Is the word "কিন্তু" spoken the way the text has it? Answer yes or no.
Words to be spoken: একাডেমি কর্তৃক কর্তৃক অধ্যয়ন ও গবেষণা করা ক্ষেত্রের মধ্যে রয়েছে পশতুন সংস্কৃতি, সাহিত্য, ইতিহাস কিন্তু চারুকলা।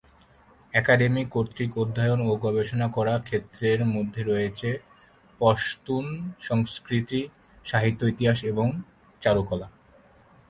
no